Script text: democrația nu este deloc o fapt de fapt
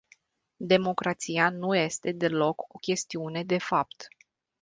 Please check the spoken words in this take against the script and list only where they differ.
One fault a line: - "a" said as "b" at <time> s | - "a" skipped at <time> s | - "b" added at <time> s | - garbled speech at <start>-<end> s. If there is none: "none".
- "fapt" said as "chestiune" at 2.7 s